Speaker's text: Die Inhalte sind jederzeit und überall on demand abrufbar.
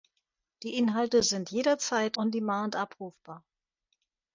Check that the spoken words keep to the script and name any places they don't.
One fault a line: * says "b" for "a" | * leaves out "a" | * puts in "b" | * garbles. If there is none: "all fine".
* leaves out "und überall"